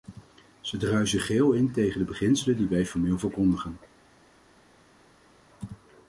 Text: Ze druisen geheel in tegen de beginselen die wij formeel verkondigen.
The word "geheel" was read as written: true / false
true